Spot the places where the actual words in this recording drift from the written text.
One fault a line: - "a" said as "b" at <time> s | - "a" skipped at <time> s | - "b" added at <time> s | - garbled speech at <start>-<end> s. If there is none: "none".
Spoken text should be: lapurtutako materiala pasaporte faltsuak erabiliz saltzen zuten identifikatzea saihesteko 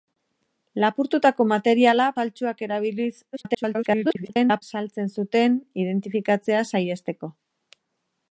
- "pasaporte" skipped at 2.1 s
- garbled speech at 3.3-4.6 s